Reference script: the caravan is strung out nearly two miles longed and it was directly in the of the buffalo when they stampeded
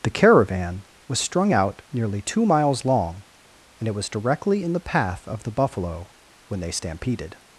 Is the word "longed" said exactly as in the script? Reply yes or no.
no